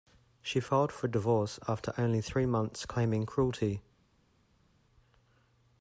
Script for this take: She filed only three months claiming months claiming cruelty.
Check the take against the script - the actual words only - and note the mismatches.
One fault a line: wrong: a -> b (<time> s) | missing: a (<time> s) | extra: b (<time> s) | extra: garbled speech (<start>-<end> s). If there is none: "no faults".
extra: for divorce after (0.9 s)
missing: months claiming (3.3 s)